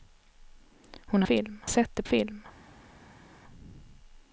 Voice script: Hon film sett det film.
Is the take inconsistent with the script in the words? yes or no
no